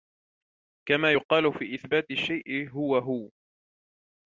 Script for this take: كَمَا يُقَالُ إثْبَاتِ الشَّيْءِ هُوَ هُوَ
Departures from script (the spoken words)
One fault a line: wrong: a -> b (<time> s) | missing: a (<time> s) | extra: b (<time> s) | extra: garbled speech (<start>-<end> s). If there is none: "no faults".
extra: فِي (1.5 s)